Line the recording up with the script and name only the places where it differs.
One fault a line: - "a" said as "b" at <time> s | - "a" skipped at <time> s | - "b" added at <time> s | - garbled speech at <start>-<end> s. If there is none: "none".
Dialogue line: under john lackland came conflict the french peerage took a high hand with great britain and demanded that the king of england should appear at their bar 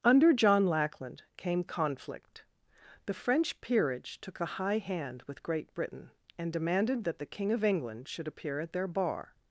none